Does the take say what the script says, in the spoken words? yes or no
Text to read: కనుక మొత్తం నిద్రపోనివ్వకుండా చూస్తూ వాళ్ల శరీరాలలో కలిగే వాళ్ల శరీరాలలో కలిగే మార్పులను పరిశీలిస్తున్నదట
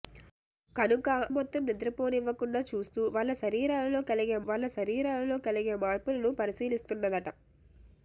yes